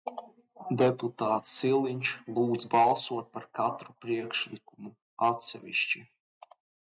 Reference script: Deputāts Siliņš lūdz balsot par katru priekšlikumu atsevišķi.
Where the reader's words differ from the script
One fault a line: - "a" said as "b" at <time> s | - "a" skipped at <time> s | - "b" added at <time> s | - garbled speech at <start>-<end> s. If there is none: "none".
none